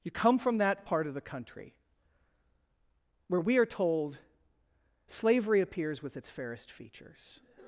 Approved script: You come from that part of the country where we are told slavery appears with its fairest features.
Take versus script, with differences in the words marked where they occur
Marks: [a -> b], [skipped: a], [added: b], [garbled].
You come from that part of the country where we are told slavery appears with its fairest features.